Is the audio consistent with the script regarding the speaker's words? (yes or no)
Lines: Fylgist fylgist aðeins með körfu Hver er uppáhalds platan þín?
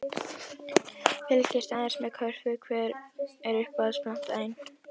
no